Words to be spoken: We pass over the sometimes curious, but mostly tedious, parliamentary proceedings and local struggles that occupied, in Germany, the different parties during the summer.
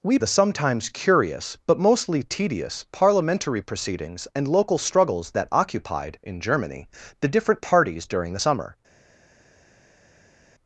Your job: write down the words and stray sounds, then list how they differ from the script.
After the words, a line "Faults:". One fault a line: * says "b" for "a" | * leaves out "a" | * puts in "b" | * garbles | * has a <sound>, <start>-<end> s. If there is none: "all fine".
We the sometimes curious, but mostly tedious, parliamentary proceedings and local struggles that occupied, in Germany, the different parties during the summer.
Faults:
* leaves out "pass over"